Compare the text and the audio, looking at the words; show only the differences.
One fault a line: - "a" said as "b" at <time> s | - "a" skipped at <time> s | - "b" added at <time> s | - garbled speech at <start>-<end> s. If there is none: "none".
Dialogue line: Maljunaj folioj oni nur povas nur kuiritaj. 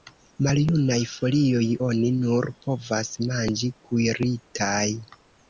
- "nur" said as "manĝi" at 3.3 s